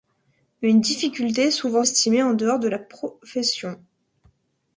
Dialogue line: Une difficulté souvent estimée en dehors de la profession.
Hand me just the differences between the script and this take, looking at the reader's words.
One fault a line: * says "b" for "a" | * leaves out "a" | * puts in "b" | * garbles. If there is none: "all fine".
all fine